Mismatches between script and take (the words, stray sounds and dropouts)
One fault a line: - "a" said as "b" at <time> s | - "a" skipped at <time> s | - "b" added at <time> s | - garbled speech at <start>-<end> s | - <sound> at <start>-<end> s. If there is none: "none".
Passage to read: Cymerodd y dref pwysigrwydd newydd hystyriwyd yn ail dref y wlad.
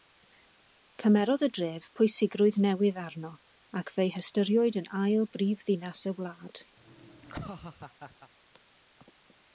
- "arno ac fe'i" added at 3.0 s
- "dref" said as "brifddinas" at 5.4 s
- laugh at 6.8-8.3 s